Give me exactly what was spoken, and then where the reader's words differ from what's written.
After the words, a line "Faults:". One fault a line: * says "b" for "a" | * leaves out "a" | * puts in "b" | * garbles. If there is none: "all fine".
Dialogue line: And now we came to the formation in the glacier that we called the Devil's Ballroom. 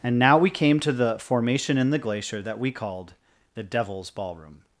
And now we came to the formation in the glacier that we called the Devil's Ballroom.
Faults:
all fine